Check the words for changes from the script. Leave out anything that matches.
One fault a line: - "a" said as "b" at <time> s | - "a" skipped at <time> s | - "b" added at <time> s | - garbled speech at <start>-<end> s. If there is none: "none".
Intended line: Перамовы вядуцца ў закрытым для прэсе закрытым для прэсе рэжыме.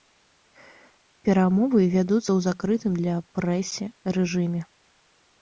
- "закрытым для прэсе" skipped at 3.8 s